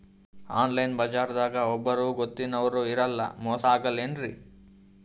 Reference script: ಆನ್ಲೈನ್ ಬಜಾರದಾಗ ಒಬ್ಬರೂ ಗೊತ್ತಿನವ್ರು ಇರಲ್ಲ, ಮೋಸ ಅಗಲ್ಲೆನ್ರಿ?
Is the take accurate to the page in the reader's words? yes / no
yes